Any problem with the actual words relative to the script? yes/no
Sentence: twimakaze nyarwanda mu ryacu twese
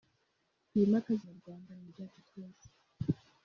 no